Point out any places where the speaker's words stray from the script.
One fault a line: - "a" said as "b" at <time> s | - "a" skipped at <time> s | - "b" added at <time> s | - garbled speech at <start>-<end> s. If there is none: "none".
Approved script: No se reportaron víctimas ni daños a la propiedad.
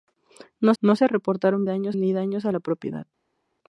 - "no" added at 0.8 s
- "víctimas" said as "daños" at 1.6 s